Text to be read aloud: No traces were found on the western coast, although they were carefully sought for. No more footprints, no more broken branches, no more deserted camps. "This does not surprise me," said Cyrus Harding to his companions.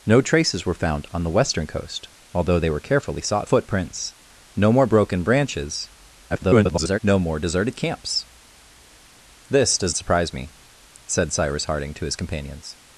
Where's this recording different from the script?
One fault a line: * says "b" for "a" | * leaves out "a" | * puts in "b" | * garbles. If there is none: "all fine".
* leaves out "for No more"
* garbles
* leaves out "not"